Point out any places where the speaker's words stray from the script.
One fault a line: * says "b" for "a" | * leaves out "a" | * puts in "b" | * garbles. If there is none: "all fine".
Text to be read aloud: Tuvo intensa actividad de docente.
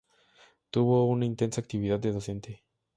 * puts in "una"